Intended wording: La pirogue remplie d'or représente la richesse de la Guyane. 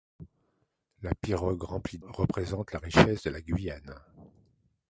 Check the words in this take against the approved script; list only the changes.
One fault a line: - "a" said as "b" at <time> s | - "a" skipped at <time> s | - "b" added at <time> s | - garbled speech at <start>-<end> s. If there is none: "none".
- "d'or" skipped at 2.0 s